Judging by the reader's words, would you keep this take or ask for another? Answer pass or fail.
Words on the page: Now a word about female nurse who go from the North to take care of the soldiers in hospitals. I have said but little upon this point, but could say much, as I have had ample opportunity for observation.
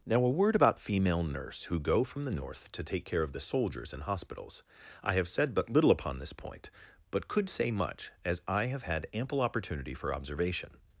pass